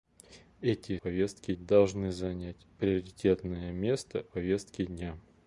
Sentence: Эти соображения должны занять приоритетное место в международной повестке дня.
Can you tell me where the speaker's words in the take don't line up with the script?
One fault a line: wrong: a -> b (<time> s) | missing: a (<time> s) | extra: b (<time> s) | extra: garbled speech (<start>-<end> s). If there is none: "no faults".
wrong: соображения -> повестке (1.0 s)
missing: в международной (4.3 s)